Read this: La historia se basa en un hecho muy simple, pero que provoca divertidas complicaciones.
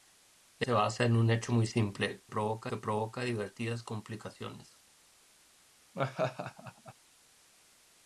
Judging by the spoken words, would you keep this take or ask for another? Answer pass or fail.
fail